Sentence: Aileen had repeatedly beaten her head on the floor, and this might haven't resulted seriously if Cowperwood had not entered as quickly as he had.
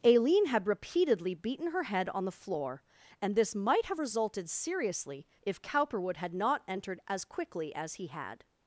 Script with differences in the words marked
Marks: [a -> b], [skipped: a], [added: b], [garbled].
Aileen had repeatedly beaten her head on the floor, and this might [haven't -> have] resulted seriously if Cowperwood had not entered as quickly as he had.